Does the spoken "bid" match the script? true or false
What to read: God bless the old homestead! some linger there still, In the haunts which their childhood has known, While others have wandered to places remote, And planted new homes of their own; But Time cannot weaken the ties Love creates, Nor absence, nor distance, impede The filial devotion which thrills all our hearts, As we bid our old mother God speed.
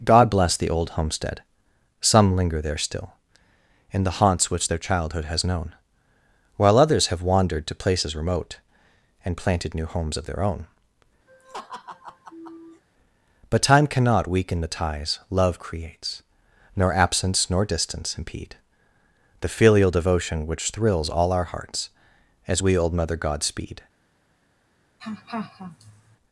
false